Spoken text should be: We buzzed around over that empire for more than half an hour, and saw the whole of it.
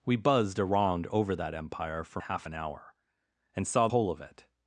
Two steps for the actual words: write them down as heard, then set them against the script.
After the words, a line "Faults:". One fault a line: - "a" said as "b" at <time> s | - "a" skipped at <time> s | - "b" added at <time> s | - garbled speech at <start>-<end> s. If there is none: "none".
We buzzed around over that empire for half an hour, and saw whole of it.
Faults:
- "more than" skipped at 2.2 s
- "the" skipped at 3.9 s